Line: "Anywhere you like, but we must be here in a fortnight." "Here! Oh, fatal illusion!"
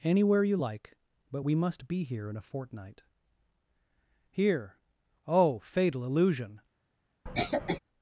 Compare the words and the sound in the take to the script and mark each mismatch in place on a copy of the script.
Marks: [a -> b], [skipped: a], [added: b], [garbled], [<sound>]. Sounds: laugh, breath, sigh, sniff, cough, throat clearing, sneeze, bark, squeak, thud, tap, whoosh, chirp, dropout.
"Anywhere you like, but we must be here in a fortnight." "Here! Oh, fatal illusion!" [cough]